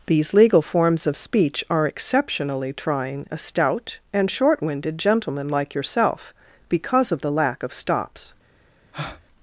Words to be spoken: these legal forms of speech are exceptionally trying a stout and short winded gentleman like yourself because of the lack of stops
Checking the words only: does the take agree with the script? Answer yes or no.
yes